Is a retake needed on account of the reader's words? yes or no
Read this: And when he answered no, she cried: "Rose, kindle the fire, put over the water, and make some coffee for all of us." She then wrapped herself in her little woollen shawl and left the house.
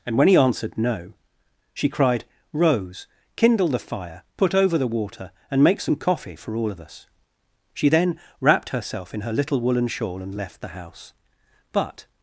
yes